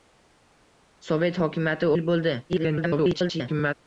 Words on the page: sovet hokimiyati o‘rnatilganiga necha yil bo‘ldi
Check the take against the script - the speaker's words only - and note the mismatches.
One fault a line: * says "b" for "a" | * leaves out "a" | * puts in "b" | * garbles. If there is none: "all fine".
* leaves out "o‘rnatilganiga necha"
* garbles